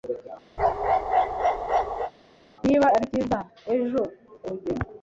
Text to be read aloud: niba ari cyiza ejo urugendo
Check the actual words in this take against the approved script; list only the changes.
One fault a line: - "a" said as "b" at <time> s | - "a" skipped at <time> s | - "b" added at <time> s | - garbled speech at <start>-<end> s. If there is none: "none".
none